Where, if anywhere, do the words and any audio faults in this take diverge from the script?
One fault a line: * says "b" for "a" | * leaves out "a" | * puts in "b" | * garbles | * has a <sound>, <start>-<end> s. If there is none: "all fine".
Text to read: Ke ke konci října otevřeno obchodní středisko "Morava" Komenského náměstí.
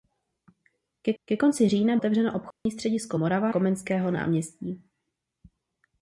* has a dropout, 2.5-2.7 s